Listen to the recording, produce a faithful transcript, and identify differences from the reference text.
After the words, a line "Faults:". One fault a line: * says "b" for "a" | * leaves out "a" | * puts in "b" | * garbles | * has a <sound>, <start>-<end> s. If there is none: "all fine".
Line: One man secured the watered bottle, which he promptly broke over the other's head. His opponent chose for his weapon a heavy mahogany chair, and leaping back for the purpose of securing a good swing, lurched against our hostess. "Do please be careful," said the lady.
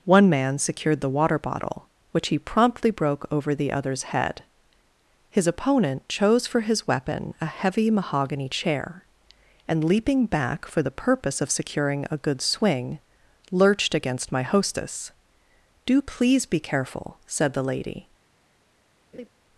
One man secured the water bottle, which he promptly broke over the other's head. His opponent chose for his weapon a heavy mahogany chair, and leaping back for the purpose of securing a good swing, lurched against my hostess. "Do please be careful," said the lady.
Faults:
* says "water" for "watered"
* says "my" for "our"
* has a laugh, 19.1-19.3 s